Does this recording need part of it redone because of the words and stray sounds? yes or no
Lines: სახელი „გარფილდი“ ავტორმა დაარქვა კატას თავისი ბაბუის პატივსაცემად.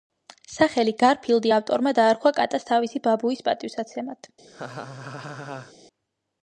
yes